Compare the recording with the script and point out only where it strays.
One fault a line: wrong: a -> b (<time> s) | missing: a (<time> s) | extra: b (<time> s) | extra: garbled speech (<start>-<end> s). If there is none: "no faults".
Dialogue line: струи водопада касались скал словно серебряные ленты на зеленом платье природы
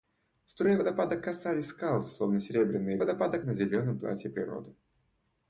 wrong: ленты -> водопада (3.0 s)